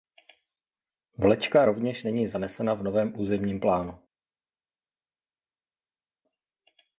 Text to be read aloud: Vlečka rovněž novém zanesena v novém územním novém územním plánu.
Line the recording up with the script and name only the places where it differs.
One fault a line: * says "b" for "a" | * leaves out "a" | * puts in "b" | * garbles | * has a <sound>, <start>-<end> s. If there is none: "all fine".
* says "není" for "novém"
* leaves out "novém územním"